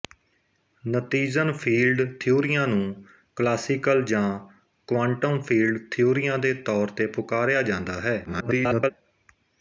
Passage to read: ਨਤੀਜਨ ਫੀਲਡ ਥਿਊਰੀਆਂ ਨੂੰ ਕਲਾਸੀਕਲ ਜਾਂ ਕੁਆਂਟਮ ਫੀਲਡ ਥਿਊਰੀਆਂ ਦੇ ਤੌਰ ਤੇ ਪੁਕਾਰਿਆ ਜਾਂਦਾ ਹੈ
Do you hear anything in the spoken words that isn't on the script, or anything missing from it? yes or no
yes